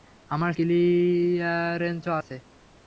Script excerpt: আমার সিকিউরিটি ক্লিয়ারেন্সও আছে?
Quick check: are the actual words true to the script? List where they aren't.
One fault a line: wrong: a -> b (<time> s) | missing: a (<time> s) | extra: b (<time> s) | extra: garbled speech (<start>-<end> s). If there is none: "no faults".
missing: সিকিউরিটি (0.5 s)